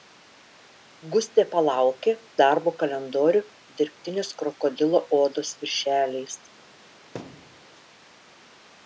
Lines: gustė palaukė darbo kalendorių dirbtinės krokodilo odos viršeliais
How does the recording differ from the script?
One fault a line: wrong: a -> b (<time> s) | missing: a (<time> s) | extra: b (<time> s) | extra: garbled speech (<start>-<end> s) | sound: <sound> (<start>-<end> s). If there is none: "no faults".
sound: thud (7.1-7.6 s)